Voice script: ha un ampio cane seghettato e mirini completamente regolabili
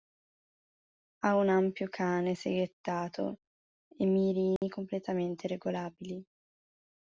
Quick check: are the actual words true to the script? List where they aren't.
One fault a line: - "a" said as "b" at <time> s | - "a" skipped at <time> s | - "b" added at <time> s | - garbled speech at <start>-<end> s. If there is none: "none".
none